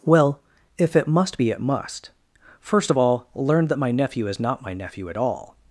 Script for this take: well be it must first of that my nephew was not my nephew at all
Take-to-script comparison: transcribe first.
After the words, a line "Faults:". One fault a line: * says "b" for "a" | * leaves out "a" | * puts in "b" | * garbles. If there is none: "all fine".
well if it must be it must first of all learn that my nephew is not my nephew at all
Faults:
* puts in "if it must"
* puts in "all learn"
* says "is" for "was"